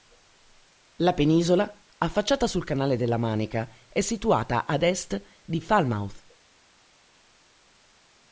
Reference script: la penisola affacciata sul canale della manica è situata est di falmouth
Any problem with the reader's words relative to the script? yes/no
yes